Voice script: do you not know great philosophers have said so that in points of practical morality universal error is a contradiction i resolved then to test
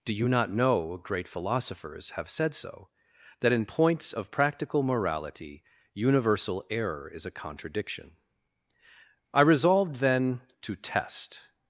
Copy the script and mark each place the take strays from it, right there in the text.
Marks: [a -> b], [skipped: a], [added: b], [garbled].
do you not know great philosophers have said so that in points of practical morality universal error is a contradiction i resolved then to test